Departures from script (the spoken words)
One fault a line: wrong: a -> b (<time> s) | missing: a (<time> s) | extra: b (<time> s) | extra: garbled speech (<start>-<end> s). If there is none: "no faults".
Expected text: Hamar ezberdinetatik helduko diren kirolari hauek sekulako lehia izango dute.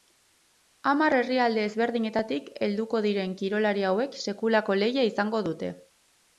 extra: herrialde (1.2 s)